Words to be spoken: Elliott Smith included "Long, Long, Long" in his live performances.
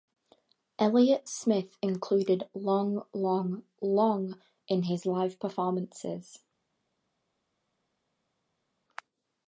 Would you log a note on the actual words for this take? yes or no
no